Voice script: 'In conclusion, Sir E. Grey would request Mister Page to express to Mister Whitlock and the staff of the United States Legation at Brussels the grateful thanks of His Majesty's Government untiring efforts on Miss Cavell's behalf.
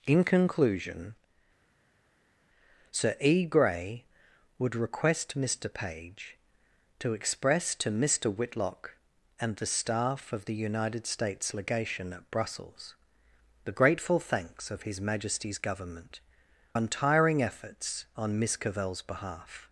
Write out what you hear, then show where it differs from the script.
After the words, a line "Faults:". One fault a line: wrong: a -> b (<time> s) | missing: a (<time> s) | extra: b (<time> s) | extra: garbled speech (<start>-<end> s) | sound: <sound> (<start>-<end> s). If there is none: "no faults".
'In conclusion, Sir E. Grey would request Mister Page to express to Mister Whitlock and the staff of the United States Legation at Brussels the grateful thanks of His Majesty's Government untiring efforts on Miss Cavell's behalf.
Faults:
no faults